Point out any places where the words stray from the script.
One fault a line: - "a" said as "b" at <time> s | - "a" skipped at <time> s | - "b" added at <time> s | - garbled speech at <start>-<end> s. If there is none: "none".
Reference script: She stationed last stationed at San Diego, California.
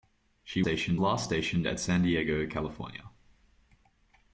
none